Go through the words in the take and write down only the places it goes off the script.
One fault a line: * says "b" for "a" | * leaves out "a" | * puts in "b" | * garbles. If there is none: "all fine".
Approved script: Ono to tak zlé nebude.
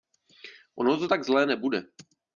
all fine